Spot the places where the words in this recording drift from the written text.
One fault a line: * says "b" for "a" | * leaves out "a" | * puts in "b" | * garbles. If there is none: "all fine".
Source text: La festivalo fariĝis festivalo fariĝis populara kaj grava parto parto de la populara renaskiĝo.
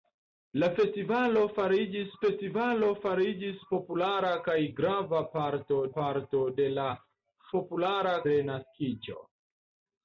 all fine